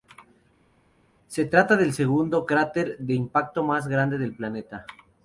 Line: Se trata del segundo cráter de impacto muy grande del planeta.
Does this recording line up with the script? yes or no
no